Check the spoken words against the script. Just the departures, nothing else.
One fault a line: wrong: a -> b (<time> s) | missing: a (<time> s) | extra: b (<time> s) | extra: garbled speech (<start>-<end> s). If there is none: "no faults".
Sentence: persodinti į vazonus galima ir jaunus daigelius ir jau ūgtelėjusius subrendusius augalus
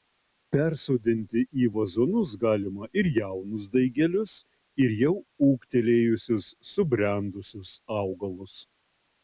no faults